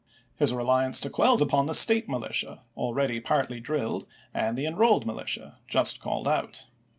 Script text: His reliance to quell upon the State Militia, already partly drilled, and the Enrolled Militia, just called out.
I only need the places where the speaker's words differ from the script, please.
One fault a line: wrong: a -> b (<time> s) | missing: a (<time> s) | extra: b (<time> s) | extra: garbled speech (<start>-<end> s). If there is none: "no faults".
no faults